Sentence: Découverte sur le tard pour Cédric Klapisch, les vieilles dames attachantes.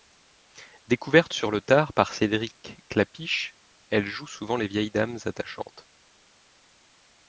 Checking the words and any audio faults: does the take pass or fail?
fail